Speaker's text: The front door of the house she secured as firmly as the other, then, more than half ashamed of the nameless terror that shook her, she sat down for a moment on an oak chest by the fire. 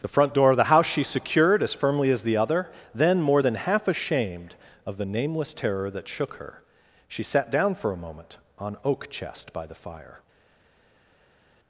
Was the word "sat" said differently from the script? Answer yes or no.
no